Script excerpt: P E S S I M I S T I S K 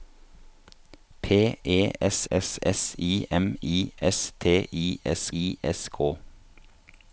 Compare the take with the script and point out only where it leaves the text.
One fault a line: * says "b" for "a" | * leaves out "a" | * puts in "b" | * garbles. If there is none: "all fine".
* puts in "S"
* puts in "I S"